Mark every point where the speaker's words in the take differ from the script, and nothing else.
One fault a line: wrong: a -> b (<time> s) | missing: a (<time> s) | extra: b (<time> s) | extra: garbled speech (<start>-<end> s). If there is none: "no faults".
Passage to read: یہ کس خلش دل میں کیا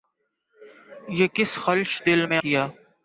no faults